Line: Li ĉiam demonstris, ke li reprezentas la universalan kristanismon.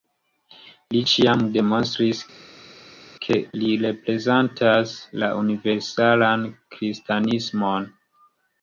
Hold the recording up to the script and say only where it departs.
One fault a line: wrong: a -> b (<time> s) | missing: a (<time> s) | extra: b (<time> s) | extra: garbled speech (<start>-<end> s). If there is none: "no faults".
no faults